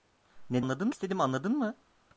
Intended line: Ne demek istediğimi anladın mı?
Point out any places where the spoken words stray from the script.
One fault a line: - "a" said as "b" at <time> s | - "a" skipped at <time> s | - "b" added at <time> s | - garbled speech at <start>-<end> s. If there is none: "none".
- "demek" said as "anladın" at 0.6 s